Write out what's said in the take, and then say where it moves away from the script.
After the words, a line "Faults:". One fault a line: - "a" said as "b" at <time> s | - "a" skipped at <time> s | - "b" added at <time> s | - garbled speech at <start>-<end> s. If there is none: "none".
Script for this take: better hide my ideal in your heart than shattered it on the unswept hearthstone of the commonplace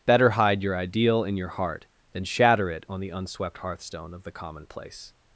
better hide your ideal in your heart than shatter it on the unswept hearthstone of the commonplace
Faults:
- "my" said as "your" at 0.6 s
- "shattered" said as "shatter" at 2.2 s